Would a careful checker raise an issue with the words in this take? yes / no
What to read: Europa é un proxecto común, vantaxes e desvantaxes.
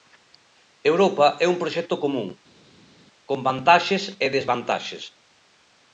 yes